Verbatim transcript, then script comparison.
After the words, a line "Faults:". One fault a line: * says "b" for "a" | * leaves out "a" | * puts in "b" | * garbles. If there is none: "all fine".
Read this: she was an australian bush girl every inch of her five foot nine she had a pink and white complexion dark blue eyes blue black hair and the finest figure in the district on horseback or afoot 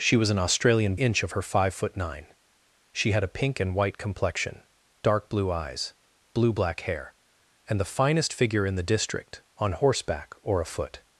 she was an australian inch of her five foot nine she had a pink and white complexion dark blue eyes blue black hair and the finest figure in the district on horseback or afoot
Faults:
* leaves out "bush girl every"